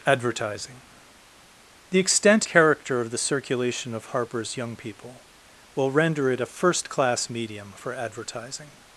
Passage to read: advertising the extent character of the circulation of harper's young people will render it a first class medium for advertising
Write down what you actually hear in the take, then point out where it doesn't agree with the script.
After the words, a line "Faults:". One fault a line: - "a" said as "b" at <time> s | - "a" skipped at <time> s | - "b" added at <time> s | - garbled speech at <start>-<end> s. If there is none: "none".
advertising the extent character of the circulation of harper's young people will render it a first class medium for advertising
Faults:
none